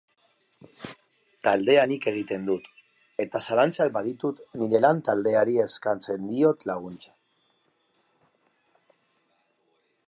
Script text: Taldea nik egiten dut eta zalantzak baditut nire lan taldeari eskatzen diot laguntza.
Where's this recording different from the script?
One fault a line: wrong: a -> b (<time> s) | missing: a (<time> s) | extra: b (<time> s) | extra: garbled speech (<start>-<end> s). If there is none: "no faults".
no faults